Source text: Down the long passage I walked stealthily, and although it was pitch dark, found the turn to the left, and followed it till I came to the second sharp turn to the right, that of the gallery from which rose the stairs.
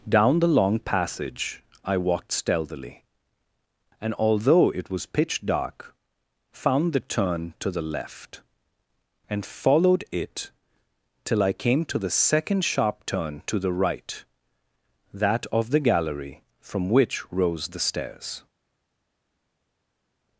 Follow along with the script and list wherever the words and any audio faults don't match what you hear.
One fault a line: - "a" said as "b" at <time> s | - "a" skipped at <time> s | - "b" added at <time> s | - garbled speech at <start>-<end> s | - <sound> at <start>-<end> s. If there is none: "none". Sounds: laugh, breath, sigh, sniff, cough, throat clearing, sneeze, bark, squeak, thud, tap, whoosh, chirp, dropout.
none